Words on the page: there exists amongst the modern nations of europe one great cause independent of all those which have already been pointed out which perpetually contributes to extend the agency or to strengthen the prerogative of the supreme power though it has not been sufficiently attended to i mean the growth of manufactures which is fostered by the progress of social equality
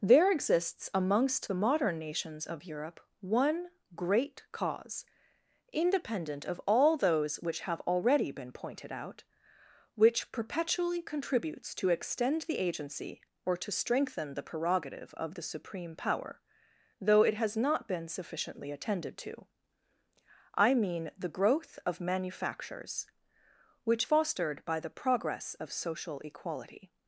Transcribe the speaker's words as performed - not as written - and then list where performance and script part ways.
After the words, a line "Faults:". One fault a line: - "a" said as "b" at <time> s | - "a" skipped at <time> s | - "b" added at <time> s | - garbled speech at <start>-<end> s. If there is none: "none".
there exists amongst the modern nations of europe one great cause independent of all those which have already been pointed out which perpetually contributes to extend the agency or to strengthen the prerogative of the supreme power though it has not been sufficiently attended to i mean the growth of manufactures which fostered by the progress of social equality
Faults:
- "is" skipped at 24.1 s